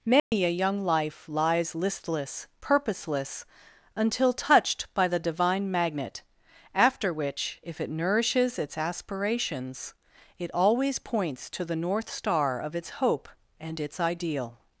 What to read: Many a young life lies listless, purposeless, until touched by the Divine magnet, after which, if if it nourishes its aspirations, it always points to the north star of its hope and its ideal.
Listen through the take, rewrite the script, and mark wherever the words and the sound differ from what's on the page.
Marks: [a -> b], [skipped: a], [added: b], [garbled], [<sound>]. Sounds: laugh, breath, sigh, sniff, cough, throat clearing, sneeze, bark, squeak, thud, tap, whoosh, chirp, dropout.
Many [dropout] a young life lies listless, purposeless, until touched by the Divine magnet, after which, if [skipped: if] it nourishes its aspirations, it always points to the north star of its hope and its ideal.